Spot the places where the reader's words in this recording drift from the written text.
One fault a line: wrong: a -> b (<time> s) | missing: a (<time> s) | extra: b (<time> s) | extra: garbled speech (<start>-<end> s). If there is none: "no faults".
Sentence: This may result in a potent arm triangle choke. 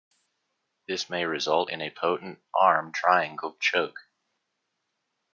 no faults